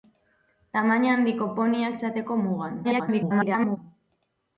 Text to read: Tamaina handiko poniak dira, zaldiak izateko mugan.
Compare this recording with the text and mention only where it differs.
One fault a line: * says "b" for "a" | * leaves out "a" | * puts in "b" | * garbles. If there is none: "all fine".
* leaves out "dira zaldiak"
* garbles